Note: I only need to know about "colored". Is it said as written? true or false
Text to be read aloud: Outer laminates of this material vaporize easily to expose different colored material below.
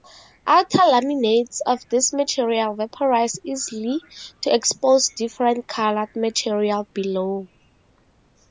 true